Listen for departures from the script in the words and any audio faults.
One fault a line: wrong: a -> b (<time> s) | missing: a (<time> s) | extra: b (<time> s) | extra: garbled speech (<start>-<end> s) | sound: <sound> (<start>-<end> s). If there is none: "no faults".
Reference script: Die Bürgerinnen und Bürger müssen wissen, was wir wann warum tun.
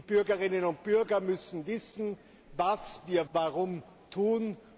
missing: wann (3.3 s)